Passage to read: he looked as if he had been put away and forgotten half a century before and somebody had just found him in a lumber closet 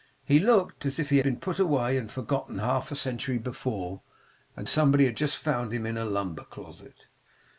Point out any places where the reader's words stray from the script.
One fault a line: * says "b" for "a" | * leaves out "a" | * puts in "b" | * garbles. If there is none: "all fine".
* leaves out "had"